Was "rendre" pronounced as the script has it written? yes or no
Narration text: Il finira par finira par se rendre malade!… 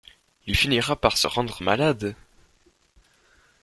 yes